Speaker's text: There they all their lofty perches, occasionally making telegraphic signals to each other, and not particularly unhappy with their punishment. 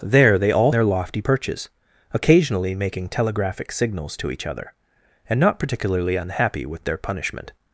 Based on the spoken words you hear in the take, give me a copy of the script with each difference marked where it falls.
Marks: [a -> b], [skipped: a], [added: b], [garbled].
There they all their lofty perches, occasionally making telegraphic signals to each other, and not particularly unhappy with their punishment.